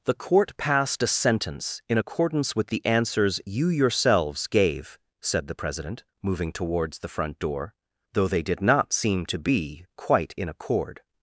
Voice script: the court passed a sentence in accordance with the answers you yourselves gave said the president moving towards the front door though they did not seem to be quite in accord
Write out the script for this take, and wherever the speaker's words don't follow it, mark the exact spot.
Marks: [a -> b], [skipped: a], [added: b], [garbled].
the court passed a sentence in accordance with the answers you yourselves gave said the president moving towards the front door though they did not seem to be quite in accord